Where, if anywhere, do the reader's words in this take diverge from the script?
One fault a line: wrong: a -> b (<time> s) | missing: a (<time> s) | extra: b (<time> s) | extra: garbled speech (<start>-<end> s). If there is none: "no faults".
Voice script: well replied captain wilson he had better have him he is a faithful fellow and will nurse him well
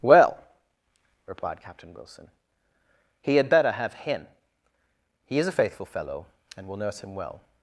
no faults